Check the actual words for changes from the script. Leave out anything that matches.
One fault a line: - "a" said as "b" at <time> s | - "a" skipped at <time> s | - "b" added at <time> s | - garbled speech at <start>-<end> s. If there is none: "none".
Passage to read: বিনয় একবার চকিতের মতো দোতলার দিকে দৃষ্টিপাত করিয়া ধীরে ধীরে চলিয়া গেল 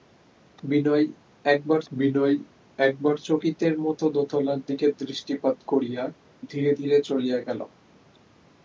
- "বিনয় একবার" added at 1.9 s